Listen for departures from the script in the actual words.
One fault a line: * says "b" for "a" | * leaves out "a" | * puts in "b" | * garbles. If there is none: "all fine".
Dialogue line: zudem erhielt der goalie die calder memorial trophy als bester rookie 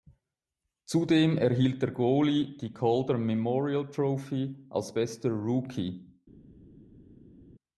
all fine